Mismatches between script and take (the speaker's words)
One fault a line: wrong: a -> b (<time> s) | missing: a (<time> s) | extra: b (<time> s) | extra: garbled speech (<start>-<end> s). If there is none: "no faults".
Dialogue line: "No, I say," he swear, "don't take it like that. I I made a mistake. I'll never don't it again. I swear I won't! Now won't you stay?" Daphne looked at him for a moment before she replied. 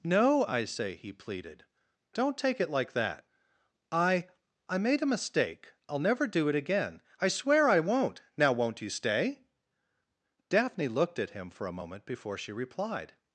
wrong: swear -> pleaded (1.1 s)
wrong: don't -> do (6.3 s)